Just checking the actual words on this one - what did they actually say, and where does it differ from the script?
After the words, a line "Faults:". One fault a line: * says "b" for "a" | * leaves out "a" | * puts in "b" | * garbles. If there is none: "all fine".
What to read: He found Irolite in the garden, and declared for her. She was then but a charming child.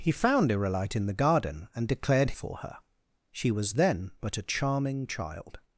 He found Irolite in the garden, and declared for her. She was then but a charming child.
Faults:
all fine